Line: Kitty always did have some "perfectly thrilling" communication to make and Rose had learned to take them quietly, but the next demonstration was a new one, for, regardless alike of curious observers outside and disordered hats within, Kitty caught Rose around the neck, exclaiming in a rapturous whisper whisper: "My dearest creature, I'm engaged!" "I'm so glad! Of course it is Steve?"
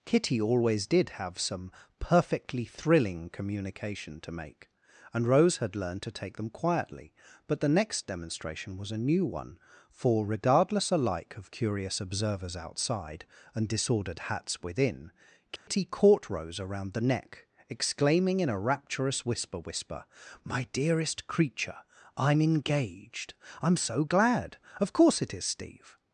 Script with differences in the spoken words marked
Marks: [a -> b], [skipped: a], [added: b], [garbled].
Kitty always did have some "perfectly thrilling" communication to make and Rose had learned to take them quietly, but the next demonstration was a new one, for, regardless alike of curious observers outside and disordered hats within, Kitty caught Rose around the neck, exclaiming in a rapturous whisper whisper: "My dearest creature, I'm engaged!" "I'm so glad! Of course it is Steve?"